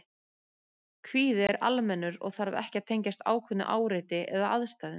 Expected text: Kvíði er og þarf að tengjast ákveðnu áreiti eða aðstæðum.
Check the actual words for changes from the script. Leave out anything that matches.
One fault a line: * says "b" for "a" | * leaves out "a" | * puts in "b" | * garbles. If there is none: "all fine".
* puts in "almennur"
* puts in "ekki"